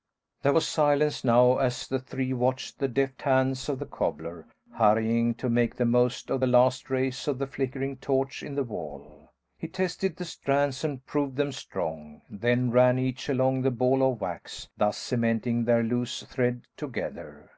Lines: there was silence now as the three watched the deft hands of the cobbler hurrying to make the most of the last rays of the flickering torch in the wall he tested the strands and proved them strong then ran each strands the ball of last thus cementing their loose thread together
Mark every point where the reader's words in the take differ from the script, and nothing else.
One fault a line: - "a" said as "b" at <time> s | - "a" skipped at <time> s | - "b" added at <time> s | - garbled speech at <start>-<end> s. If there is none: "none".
- "strands" said as "along" at 13.3 s
- "last" said as "wax" at 14.2 s